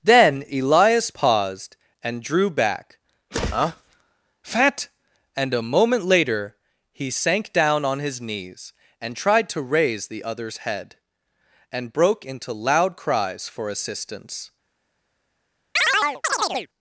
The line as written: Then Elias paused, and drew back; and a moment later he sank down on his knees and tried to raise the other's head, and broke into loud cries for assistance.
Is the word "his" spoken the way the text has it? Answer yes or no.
yes